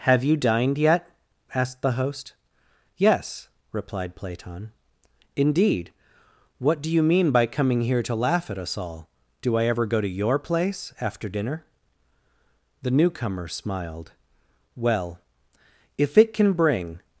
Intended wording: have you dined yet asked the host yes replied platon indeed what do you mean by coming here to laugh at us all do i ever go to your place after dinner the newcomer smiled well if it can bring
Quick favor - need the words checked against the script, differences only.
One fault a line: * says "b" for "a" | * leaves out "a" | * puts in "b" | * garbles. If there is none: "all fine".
all fine